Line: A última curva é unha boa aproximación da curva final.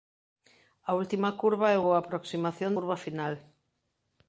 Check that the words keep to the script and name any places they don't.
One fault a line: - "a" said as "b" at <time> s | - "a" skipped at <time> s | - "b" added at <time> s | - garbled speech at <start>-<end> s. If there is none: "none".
- "unha" skipped at 1.8 s
- "da" skipped at 2.7 s